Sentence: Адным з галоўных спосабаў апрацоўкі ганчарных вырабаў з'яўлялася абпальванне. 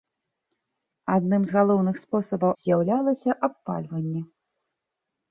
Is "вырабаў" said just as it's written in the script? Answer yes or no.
no